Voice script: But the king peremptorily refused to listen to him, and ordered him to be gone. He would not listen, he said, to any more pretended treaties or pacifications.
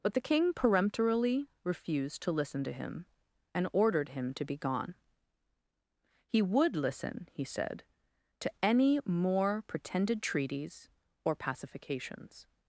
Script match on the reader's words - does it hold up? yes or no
no